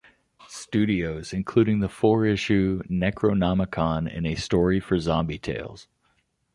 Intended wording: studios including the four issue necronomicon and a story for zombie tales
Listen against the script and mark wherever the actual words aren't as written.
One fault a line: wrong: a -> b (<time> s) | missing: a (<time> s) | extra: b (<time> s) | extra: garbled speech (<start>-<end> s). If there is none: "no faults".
no faults